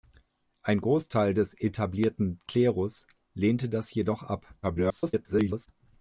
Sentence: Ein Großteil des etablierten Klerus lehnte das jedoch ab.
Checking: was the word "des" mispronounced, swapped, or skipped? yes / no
no